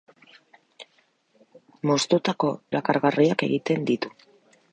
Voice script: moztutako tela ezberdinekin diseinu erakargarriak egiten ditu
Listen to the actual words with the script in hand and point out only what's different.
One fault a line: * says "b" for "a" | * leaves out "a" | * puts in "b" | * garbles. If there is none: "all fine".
* leaves out "tela ezberdinekin diseinu"